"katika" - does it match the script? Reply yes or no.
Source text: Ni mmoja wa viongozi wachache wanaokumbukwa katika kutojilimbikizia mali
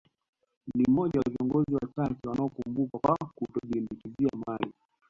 no